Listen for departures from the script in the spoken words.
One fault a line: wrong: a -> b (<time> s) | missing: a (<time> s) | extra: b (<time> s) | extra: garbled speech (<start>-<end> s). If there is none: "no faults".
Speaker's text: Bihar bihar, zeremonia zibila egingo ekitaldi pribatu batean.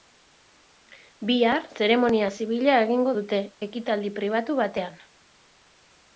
missing: bihar (1.7 s)
extra: dute (3.2 s)